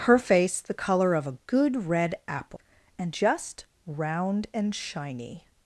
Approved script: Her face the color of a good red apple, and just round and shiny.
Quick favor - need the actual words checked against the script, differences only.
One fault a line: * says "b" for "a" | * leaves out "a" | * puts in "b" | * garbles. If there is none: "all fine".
all fine